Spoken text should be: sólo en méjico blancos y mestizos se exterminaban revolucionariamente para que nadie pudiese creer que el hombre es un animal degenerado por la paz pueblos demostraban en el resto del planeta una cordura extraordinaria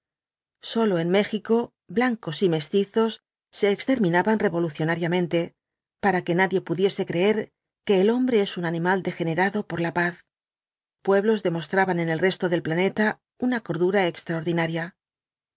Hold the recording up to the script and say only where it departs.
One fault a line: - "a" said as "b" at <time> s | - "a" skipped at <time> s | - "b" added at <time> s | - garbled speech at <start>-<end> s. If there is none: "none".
none